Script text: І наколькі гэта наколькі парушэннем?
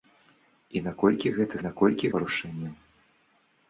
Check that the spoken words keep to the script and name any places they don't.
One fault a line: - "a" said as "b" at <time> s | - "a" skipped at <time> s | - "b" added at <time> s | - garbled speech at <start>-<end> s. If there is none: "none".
none